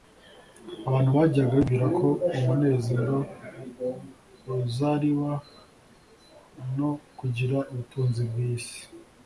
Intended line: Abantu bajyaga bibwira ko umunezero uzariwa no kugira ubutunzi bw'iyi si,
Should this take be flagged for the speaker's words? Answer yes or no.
no